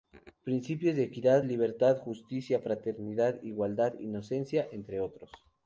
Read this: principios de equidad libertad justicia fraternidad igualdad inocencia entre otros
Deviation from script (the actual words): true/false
false